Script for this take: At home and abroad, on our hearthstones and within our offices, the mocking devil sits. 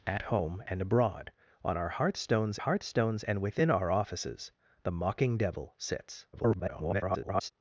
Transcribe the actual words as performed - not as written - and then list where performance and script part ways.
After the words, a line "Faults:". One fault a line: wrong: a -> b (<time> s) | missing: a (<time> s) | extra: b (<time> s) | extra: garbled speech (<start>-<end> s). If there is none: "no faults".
At home and abroad, on our hearthstones hearthstones and within our offices, the mocking devil sits. [garbled]
Faults:
extra: hearthstones (2.6 s)
extra: garbled speech (6.3-7.5 s)